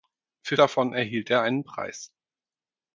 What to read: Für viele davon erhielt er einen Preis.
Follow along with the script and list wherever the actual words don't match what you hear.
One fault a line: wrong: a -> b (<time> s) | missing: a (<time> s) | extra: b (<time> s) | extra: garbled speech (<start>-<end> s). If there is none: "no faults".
missing: viele (0.6 s)